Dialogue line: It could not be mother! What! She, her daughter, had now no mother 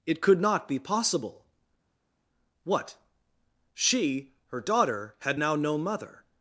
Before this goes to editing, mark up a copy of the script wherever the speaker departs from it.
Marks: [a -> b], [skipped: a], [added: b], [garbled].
It could not be [mother! -> possible] What! She, her daughter, had now no mother